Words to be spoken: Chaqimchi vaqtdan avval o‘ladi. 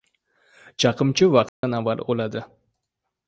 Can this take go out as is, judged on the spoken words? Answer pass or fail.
pass